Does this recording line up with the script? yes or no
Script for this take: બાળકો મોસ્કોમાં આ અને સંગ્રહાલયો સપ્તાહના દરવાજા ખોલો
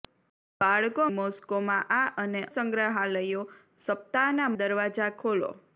yes